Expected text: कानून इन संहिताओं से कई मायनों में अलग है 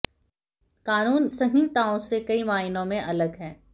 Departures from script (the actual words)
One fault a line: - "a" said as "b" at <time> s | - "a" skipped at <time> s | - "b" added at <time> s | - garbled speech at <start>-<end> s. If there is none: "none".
- "इन" skipped at 1.3 s